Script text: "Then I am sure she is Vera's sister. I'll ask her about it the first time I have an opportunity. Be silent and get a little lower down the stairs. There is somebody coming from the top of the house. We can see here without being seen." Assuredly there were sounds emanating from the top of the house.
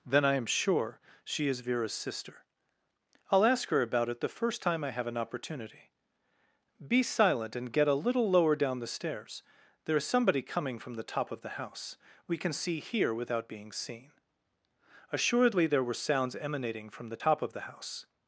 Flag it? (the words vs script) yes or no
no